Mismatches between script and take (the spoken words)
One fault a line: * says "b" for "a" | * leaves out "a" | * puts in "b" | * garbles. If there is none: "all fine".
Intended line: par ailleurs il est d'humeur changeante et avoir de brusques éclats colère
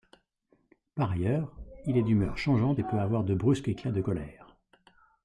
* puts in "peut"
* puts in "de"